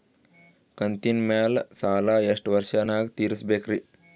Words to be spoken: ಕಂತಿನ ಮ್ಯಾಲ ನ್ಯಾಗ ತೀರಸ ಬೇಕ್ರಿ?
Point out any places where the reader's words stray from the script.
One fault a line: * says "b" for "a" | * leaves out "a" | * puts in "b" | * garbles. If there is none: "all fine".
* puts in "ಸಾಲಾ ಎಷ್ಟ ವರ್ಷ"